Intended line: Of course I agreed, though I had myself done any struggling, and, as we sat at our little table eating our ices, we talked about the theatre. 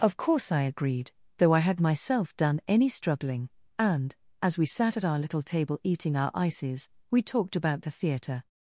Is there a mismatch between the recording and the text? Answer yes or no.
no